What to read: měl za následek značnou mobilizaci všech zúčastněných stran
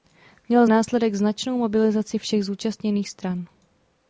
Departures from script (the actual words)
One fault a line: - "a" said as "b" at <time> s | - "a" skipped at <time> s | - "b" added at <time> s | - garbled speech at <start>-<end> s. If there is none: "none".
- "za" skipped at 0.7 s